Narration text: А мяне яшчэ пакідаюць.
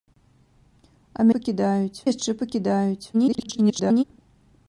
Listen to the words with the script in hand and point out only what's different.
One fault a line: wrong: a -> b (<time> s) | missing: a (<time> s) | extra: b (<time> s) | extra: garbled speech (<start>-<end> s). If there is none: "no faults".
wrong: мяне -> пакідаюць (1.3 s)
extra: garbled speech (3.1-4.0 s)